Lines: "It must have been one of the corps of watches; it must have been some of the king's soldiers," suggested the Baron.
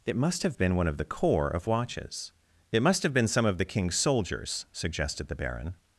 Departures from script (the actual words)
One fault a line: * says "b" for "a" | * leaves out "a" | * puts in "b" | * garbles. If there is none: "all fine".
all fine